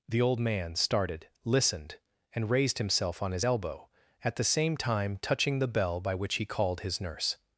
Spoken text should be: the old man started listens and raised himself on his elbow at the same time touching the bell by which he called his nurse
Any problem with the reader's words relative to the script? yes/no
yes